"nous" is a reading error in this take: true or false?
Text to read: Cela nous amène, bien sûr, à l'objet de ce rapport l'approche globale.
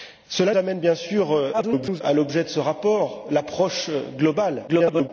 true